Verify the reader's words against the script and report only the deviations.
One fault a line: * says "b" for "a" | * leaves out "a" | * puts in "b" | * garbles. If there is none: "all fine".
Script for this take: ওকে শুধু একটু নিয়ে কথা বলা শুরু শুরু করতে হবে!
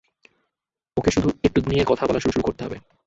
all fine